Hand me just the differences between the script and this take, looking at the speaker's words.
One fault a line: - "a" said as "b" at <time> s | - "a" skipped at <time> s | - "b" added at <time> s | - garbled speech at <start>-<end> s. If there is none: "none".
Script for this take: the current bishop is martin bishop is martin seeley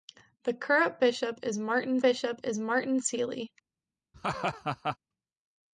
none